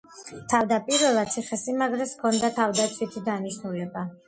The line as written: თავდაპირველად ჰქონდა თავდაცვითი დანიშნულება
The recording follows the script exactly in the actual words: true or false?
false